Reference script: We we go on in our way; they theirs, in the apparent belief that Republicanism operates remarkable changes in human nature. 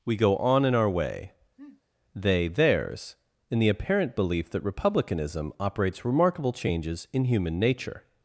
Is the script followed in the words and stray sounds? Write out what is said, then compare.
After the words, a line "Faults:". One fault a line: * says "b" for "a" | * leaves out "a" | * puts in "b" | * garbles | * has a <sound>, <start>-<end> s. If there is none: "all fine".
We go on in our way; they theirs, in the apparent belief that Republicanism operates remarkable changes in human nature.
Faults:
* leaves out "we"
* has a sniff, 1.6-1.8 s